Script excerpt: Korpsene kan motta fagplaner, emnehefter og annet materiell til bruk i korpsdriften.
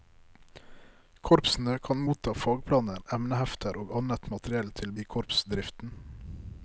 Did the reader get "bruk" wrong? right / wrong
wrong